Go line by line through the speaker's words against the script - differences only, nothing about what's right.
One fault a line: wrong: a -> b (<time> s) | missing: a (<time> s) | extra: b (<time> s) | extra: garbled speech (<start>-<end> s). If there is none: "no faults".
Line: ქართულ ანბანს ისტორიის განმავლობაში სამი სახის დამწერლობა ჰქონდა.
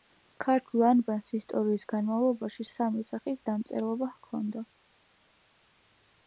no faults